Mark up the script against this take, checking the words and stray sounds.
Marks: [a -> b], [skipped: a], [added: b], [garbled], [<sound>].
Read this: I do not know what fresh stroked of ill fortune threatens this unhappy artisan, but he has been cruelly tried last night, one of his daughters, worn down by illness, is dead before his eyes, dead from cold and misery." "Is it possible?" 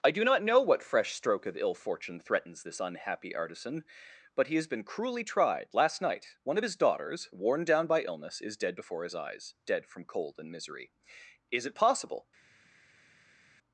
I do not know what fresh [stroked -> stroke] of ill fortune threatens this unhappy artisan, but he has been cruelly tried last night, one of his daughters, worn down by illness, is dead before his eyes, dead from cold and misery." "Is it possible?"